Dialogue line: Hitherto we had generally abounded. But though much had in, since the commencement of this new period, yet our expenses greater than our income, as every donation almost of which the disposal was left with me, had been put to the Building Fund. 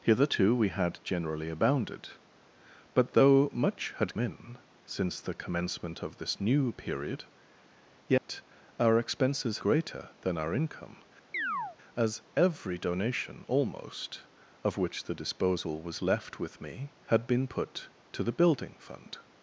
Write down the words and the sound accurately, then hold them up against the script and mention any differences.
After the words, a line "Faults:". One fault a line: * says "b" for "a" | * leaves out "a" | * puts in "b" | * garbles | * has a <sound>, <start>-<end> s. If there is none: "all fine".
Hitherto we had generally abounded. But though much had in, since the commencement of this new period, yet our expenses greater than our income, as every donation almost of which the disposal was left with me, had been put to the Building Fund.
Faults:
* has a dropout, 8.2-8.3 s
* has a chirp, 11.3-11.8 s